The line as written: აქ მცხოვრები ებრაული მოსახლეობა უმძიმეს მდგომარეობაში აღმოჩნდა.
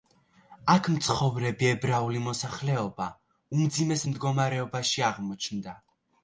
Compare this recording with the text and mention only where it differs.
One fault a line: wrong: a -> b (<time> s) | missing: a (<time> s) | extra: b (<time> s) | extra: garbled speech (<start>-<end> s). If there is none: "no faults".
no faults